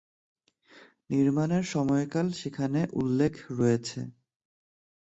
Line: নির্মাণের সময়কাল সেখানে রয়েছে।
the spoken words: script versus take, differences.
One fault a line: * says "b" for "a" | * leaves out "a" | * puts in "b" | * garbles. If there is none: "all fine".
* puts in "উল্লেখ"